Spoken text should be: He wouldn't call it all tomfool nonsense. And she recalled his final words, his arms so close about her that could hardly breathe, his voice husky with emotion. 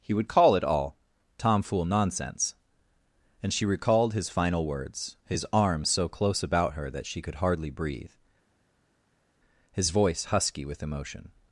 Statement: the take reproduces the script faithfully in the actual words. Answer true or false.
false